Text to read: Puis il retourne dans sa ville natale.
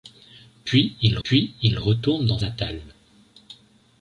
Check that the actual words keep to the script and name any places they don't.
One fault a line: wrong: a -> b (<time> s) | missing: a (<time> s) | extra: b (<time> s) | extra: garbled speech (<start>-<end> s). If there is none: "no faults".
extra: puis il (1.2 s)
missing: sa ville (2.4 s)